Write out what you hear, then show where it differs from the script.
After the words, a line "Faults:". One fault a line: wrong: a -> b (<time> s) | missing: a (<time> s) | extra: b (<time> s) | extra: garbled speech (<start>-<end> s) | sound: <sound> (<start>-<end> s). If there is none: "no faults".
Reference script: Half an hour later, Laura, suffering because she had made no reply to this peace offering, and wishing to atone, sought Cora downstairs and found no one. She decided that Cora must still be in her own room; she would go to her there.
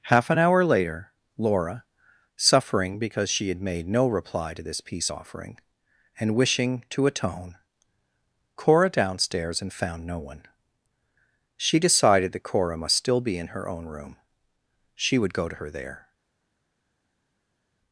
Half an hour later, Laura, suffering because she had made no reply to this peace offering, and wishing to atone, Cora downstairs and found no one. She decided that Cora must still be in her own room; she would go to her there.
Faults:
missing: sought (7.6 s)